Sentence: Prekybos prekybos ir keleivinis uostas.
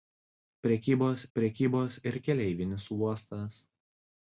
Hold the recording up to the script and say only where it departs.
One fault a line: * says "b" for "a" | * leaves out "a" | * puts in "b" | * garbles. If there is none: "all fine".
all fine